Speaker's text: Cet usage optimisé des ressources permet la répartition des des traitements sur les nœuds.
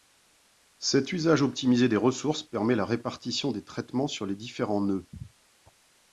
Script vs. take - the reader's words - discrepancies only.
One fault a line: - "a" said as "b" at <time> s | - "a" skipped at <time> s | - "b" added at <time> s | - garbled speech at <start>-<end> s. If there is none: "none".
- "des" skipped at 3.6 s
- "différents" added at 4.3 s